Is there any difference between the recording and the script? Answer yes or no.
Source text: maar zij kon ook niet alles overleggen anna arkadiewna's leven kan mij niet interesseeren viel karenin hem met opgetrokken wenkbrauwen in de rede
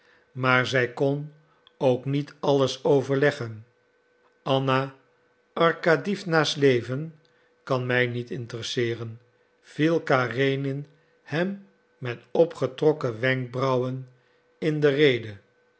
no